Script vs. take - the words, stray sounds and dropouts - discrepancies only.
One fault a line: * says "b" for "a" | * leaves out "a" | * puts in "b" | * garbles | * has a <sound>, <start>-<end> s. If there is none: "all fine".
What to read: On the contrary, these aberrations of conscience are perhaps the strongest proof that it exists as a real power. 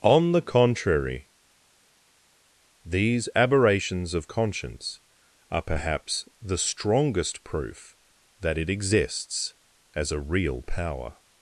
all fine